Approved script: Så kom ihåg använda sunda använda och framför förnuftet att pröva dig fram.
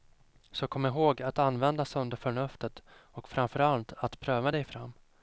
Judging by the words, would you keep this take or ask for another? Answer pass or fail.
fail